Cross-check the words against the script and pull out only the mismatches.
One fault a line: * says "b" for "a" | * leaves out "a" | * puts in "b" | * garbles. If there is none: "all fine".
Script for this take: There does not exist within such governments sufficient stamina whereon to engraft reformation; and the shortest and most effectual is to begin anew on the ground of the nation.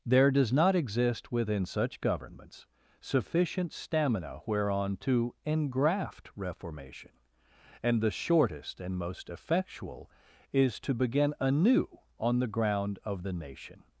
all fine